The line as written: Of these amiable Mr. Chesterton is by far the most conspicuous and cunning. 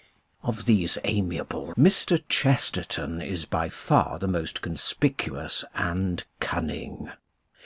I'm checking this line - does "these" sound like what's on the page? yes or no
yes